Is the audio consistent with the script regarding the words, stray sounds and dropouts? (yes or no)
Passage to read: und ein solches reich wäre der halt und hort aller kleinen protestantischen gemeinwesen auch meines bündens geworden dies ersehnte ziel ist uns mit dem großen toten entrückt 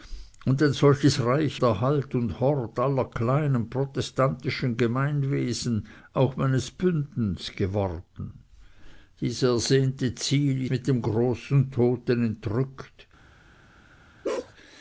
no